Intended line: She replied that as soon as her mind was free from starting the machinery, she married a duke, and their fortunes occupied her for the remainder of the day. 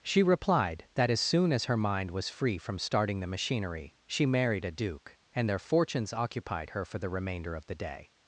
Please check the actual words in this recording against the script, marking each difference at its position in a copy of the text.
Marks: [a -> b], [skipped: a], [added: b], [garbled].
She replied that as soon as her mind was free from starting the machinery, she married a duke, and their fortunes occupied her for the remainder of the day.